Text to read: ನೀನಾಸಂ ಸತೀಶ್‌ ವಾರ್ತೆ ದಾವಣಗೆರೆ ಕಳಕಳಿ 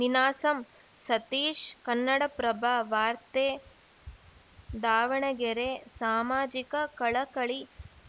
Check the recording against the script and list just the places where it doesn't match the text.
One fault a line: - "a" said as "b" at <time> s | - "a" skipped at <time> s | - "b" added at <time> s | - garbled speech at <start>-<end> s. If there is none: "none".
- "ಕನ್ನಡಪ್ರಭ" added at 1.8 s
- "ಸಾಮಾಜಿಕ" added at 6.0 s